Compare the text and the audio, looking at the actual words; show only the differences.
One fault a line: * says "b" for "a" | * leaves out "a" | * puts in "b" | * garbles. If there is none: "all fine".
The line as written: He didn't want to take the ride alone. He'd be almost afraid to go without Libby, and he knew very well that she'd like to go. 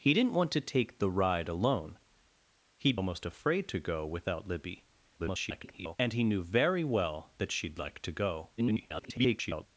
* leaves out "be"
* garbles
* garbles